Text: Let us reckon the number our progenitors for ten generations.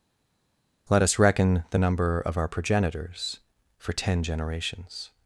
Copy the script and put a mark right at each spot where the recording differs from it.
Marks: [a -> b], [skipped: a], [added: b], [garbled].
Let us reckon the number [added: of] our progenitors for ten generations.